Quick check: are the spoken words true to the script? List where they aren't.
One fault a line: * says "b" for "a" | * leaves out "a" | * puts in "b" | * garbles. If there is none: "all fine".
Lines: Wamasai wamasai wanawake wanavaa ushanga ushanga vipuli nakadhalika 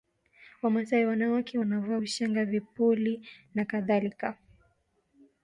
* leaves out "wamasai"
* leaves out "ushanga"